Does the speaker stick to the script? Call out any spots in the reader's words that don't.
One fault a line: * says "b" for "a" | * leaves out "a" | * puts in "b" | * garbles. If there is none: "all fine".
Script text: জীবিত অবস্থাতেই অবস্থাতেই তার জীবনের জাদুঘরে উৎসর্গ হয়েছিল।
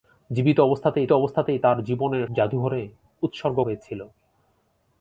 all fine